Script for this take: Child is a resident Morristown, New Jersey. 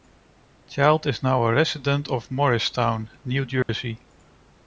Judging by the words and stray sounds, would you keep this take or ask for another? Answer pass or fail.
fail